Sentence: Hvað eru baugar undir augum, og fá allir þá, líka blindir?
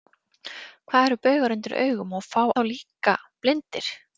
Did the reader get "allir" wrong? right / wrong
wrong